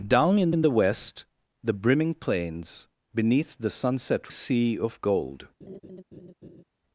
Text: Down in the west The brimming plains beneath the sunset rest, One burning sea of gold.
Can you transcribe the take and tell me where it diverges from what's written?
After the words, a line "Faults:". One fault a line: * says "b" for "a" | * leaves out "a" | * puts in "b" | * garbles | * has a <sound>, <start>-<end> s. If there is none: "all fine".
Down in in the west The brimming plains beneath the sunset sea of gold.
Faults:
* puts in "in"
* leaves out "rest One burning"
* has a laugh, 5.6-6.6 s